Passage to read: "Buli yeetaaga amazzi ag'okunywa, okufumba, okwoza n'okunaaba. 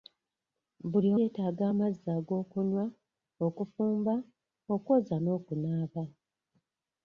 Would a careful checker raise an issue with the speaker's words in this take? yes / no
no